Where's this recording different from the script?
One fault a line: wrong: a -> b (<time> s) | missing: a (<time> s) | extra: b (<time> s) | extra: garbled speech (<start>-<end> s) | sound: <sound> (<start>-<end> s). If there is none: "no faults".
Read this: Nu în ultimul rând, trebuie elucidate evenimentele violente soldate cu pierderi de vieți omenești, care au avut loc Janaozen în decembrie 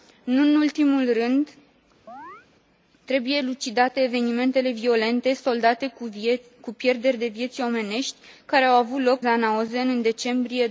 sound: chirp (2.1-2.5 s)